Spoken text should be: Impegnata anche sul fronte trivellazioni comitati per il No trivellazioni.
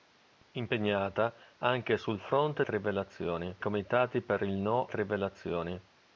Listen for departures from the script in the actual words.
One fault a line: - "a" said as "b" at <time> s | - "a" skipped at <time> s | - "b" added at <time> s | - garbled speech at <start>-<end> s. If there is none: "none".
none